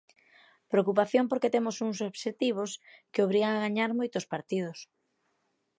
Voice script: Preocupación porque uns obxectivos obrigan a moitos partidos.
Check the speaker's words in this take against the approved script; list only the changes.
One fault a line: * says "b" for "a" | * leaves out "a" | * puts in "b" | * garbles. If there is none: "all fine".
* puts in "temos"
* puts in "que"
* puts in "gañar"